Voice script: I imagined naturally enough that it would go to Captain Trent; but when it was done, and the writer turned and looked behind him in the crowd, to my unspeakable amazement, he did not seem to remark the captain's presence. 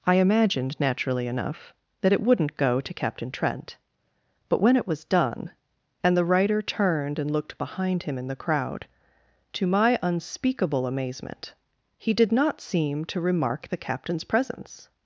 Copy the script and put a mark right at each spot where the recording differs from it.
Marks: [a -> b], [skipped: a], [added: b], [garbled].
I imagined naturally enough that it [would -> wouldn't] go to Captain Trent; but when it was done, and the writer turned and looked behind him in the crowd, to my unspeakable amazement, he did not seem to remark the captain's presence.